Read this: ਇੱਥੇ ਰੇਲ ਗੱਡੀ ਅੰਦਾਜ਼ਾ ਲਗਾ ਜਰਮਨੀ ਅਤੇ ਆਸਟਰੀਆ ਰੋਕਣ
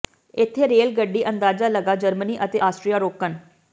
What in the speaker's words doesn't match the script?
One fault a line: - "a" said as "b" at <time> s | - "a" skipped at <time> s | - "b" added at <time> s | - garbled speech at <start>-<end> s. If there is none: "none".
none